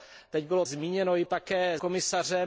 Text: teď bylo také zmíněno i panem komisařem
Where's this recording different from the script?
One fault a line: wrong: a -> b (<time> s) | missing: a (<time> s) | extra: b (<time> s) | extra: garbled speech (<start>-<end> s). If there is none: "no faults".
missing: také (0.7 s)
wrong: panem -> také (1.2 s)